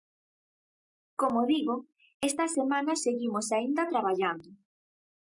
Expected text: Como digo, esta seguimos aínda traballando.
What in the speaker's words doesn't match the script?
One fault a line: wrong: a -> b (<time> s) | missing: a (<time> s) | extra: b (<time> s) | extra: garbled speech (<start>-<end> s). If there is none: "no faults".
extra: semana (2.5 s)